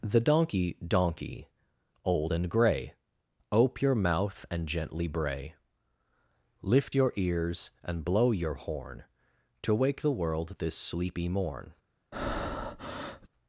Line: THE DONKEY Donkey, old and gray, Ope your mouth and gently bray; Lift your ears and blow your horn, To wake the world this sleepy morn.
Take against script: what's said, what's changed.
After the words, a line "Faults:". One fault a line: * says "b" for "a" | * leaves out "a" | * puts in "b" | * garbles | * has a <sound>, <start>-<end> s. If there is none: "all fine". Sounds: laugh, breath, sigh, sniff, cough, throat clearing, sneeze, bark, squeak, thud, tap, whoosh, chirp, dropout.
THE DONKEY Donkey, old and gray, Ope your mouth and gently bray; Lift your ears and blow your horn, To wake the world this sleepy morn.
Faults:
* has a breath, 12.1-13.3 s